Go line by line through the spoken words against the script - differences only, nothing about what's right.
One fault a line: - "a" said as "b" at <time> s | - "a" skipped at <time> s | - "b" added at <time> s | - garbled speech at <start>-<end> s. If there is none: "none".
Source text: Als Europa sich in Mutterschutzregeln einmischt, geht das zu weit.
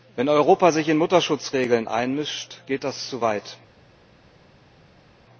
- "Als" said as "Wenn" at 0.1 s